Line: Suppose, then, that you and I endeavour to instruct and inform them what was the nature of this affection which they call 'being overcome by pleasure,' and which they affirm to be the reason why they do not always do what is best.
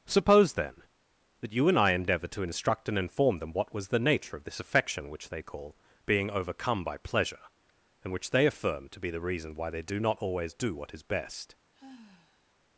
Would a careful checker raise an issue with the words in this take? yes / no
no